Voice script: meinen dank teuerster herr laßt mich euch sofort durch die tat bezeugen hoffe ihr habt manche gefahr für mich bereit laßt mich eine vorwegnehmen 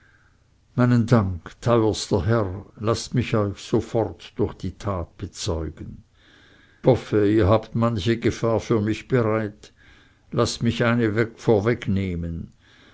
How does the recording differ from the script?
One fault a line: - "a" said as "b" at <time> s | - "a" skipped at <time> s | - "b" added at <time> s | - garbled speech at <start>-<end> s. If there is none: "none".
none